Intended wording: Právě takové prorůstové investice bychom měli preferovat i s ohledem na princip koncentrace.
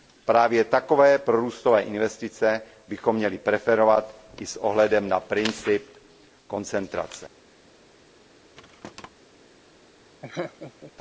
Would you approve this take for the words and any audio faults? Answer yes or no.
no